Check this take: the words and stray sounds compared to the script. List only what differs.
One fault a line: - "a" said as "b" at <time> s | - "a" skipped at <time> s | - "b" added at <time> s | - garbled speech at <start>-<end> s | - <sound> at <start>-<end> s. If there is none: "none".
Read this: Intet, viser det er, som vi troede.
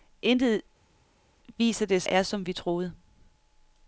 none